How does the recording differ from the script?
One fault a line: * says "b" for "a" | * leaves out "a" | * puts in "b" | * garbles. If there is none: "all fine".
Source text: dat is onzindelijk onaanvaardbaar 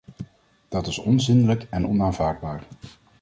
* puts in "en"